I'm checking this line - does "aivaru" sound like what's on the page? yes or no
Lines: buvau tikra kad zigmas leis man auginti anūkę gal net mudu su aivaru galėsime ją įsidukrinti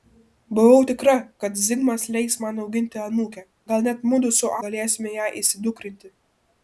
no